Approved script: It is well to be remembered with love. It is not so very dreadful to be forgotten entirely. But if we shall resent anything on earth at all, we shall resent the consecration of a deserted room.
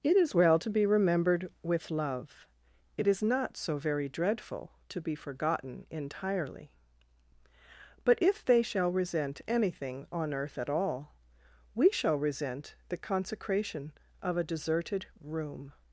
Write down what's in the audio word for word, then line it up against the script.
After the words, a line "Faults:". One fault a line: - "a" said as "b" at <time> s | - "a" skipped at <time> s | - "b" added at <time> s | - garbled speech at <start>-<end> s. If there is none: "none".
It is well to be remembered with love. It is not so very dreadful to be forgotten entirely. But if they shall resent anything on earth at all, we shall resent the consecration of a deserted room.
Faults:
- "we" said as "they" at 8.4 s